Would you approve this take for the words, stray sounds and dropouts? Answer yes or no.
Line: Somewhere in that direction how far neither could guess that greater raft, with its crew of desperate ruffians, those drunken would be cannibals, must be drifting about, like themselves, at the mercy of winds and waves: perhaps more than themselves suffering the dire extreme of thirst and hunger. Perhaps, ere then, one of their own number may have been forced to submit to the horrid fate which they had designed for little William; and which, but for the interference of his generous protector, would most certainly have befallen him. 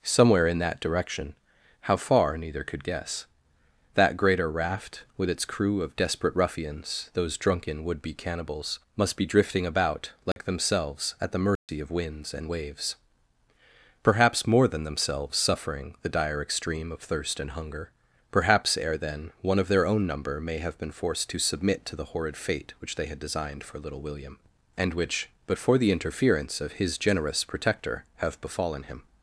no